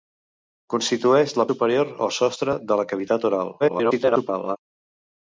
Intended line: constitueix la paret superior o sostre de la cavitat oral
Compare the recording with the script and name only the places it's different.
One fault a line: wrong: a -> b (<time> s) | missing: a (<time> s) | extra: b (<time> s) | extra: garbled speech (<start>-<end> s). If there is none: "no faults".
missing: paret (1.4 s)
extra: garbled speech (3.6-4.6 s)